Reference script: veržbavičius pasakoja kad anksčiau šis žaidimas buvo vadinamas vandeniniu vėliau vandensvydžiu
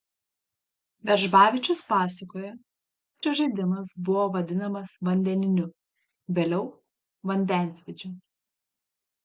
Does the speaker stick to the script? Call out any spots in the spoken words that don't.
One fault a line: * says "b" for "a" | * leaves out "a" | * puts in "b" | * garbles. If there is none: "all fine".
* leaves out "kad anksčiau"